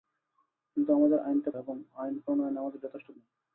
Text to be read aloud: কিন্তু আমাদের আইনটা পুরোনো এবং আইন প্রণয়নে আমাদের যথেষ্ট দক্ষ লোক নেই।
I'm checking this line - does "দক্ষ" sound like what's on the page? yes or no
no